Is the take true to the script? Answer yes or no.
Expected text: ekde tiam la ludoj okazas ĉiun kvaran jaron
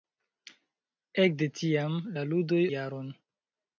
no